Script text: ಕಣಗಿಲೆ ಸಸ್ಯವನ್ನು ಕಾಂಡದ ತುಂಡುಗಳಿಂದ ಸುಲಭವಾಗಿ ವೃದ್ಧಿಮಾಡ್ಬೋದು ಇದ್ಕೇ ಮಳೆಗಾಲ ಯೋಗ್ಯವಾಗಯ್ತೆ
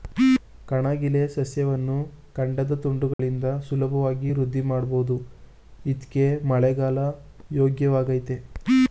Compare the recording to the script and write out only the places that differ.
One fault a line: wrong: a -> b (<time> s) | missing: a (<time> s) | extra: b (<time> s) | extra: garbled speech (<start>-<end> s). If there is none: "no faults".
no faults